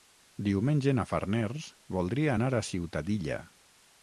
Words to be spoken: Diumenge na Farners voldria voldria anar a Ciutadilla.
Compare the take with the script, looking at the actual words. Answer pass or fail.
fail